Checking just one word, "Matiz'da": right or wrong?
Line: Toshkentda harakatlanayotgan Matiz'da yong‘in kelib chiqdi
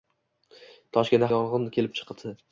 wrong